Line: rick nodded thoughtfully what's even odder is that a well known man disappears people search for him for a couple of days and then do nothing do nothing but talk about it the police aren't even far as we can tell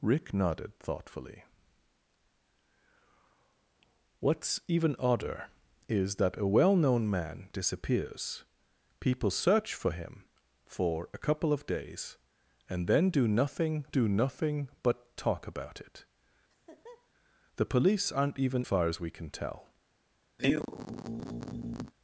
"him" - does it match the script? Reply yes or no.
yes